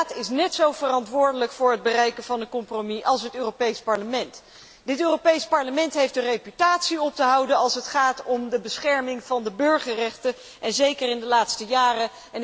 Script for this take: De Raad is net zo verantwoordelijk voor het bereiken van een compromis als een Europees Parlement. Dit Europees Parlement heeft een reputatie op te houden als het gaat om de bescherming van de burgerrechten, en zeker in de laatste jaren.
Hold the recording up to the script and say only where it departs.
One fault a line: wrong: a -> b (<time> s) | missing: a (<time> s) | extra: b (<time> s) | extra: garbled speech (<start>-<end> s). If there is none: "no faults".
wrong: een -> het (3.2 s)